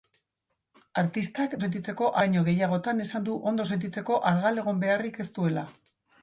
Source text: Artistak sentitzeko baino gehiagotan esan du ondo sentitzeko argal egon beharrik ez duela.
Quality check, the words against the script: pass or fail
pass